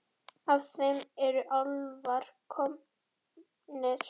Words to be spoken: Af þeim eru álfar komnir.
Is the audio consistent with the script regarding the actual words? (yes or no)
yes